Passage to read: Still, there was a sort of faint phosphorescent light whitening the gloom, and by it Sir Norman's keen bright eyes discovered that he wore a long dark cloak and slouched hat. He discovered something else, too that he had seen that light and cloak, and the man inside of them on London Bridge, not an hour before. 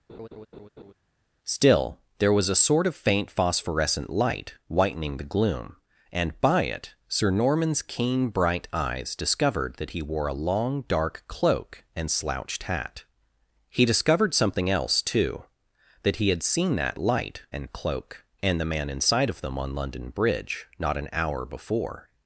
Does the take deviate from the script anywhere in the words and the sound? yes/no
yes